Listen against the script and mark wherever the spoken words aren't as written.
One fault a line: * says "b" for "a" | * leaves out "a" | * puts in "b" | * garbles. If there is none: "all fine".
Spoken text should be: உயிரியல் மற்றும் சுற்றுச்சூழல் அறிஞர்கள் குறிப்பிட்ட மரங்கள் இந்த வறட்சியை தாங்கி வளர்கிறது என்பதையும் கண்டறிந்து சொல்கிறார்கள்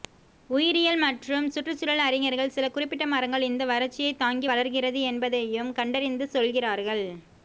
* puts in "சில"